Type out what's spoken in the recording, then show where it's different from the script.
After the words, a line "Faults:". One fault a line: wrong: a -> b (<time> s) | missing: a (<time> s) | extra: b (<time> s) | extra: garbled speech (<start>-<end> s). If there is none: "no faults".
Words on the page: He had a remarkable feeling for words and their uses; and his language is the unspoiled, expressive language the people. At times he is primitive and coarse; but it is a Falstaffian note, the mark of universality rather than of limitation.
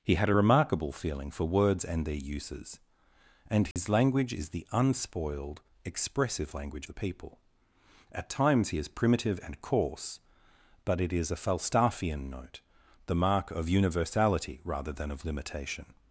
He had a remarkable feeling for words and their uses; and his language is the unspoiled, expressive language the people. At times he is primitive and coarse; but it is a Falstaffian note, the mark of universality rather than of limitation.
Faults:
no faults